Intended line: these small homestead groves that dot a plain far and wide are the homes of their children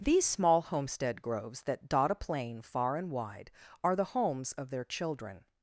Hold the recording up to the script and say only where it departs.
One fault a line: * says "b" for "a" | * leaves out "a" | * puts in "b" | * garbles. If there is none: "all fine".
all fine